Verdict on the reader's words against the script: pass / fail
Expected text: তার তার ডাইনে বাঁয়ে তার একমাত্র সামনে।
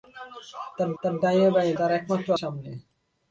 pass